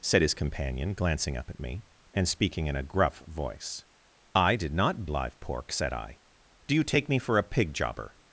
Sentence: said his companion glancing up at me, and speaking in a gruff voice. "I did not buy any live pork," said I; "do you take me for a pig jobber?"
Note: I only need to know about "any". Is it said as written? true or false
false